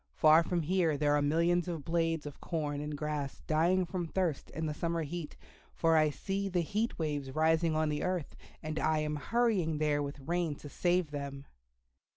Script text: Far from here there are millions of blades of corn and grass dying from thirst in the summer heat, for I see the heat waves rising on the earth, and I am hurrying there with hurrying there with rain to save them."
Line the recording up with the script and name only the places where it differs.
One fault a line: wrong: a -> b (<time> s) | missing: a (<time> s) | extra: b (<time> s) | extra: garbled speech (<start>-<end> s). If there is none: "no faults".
missing: hurrying there with (10.2 s)